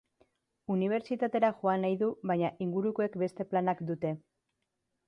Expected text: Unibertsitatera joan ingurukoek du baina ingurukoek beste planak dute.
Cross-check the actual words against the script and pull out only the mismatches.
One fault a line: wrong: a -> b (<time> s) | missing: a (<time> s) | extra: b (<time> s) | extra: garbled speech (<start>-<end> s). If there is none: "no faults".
wrong: ingurukoek -> nahi (1.9 s)